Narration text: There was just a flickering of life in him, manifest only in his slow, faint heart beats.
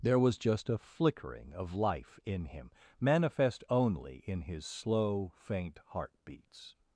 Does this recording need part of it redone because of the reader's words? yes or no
no